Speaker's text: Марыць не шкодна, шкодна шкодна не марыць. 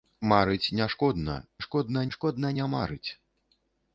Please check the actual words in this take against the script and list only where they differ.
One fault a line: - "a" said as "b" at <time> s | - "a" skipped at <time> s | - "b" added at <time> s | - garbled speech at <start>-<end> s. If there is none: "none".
none